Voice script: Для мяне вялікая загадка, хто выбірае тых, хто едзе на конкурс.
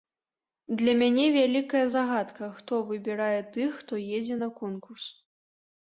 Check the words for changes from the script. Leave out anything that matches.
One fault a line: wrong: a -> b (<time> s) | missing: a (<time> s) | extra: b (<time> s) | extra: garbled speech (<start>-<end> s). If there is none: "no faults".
no faults